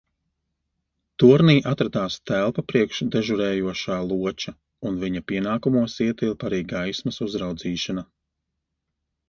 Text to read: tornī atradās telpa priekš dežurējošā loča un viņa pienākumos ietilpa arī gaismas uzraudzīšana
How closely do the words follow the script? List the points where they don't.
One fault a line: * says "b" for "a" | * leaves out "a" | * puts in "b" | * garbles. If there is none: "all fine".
all fine